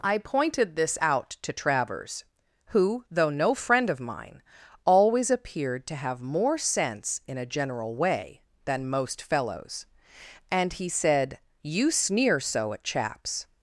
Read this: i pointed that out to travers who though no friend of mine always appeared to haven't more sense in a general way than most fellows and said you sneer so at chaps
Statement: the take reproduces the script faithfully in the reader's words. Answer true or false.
false